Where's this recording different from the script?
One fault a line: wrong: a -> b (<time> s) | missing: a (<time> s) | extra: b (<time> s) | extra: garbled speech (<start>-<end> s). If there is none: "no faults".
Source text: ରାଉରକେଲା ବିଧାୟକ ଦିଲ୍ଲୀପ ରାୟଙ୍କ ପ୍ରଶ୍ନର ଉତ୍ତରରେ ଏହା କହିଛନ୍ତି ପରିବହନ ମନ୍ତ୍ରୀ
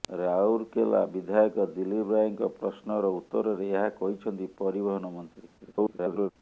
extra: garbled speech (5.6-6.3 s)